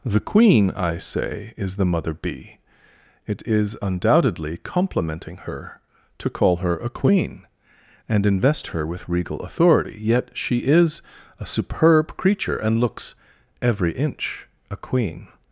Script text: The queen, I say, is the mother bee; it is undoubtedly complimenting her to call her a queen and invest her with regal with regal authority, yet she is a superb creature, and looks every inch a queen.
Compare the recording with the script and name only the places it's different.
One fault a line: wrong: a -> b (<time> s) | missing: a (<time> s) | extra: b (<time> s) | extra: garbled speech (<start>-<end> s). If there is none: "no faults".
missing: with regal (9.4 s)